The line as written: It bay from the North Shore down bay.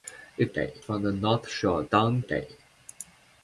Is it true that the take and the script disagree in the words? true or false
false